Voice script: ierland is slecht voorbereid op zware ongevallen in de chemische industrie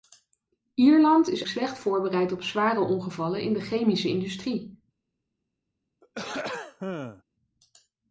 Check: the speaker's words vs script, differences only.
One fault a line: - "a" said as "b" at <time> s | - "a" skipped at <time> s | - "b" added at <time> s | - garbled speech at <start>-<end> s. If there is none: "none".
none